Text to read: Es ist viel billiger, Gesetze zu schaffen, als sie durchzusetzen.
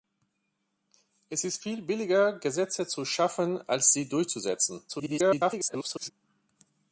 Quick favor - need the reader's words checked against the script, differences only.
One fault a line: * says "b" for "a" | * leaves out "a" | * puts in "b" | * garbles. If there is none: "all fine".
* garbles